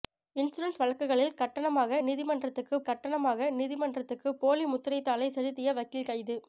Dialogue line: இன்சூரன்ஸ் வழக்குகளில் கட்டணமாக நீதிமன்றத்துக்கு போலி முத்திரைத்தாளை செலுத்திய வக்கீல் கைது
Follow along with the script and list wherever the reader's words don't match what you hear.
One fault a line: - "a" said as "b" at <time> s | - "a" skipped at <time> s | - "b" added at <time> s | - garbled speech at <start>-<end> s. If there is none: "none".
- "கட்டணமாக நீதிமன்றத்துக்கு" added at 2.9 s